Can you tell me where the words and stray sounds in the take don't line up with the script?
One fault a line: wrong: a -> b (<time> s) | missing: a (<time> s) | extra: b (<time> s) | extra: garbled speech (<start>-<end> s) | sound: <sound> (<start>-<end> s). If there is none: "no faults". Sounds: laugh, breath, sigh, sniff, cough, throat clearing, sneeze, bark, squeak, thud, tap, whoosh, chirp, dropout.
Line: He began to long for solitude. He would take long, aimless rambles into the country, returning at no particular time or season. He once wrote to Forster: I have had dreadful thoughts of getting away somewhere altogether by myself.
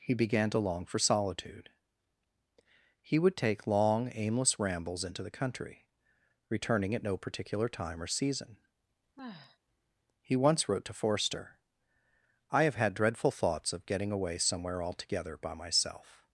sound: sigh (9.2-9.6 s)